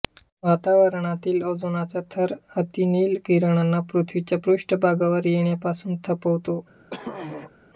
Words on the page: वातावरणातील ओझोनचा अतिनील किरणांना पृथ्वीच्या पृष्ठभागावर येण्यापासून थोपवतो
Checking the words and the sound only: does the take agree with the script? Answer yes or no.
no